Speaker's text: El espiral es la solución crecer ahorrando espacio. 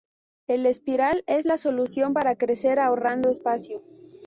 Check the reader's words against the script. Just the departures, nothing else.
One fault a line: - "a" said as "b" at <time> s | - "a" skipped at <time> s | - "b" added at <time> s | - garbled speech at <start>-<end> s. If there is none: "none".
- "para" added at 2.1 s